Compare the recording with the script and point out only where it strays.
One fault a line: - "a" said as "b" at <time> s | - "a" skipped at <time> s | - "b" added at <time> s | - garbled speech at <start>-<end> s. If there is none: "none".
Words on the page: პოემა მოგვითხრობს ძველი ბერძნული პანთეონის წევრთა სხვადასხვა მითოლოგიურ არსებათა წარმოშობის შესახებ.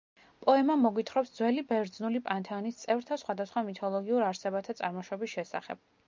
none